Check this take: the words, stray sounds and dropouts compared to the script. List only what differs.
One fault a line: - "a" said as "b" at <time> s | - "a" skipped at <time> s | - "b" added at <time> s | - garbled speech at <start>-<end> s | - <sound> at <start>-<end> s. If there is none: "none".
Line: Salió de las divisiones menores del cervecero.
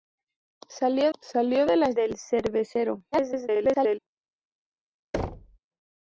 - "salió" added at 1.2 s
- "divisiones menores" skipped at 2.0 s
- garbled speech at 3.1-4.0 s
- thud at 5.1-5.6 s